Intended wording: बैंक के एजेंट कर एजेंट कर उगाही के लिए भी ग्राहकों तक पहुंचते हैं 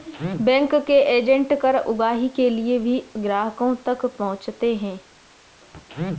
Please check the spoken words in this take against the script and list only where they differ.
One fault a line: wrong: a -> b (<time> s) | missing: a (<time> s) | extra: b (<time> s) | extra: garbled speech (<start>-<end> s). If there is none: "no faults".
missing: एजेंट कर (1.8 s)